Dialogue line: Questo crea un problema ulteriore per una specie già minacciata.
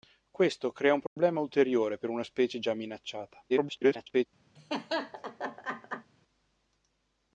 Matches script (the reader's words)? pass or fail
fail